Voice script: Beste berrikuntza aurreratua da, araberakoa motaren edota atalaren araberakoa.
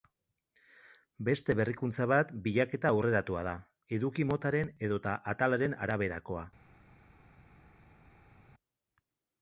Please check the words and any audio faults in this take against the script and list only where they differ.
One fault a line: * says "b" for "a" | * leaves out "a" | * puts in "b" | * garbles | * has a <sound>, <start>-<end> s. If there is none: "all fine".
* puts in "bat bilaketa"
* says "eduki" for "araberakoa"